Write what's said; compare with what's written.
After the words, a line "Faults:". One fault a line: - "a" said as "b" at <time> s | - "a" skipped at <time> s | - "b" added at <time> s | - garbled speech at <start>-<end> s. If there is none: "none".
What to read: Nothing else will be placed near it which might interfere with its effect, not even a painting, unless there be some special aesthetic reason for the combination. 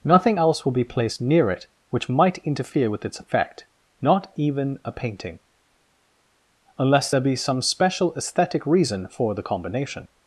Nothing else will be placed near it which might interfere with its effect, not even a painting, unless there be some special aesthetic reason for the combination.
Faults:
none